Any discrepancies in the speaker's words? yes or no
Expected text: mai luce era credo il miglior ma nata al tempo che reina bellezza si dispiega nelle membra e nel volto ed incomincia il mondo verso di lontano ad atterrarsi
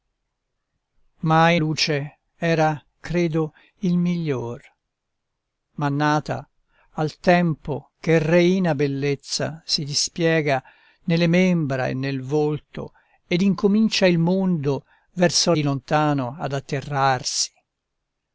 no